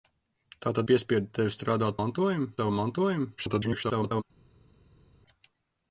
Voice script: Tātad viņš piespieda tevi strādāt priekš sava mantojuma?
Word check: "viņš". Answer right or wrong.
wrong